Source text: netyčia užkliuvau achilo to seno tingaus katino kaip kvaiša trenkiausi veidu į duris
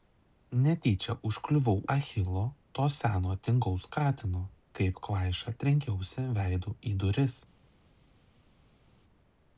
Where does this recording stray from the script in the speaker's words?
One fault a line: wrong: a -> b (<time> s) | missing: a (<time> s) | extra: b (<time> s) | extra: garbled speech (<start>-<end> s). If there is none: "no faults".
no faults